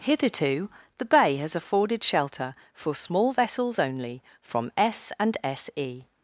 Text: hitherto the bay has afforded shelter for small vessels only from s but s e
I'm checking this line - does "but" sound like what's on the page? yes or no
no